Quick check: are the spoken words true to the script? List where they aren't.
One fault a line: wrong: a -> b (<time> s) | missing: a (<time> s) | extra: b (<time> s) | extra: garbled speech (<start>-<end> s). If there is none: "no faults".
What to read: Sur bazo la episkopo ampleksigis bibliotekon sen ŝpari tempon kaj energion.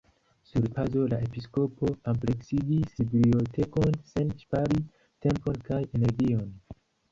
no faults